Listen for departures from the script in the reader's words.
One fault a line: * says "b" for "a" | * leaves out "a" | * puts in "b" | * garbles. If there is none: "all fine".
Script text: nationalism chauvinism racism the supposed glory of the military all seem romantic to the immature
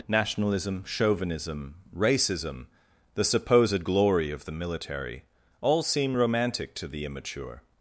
all fine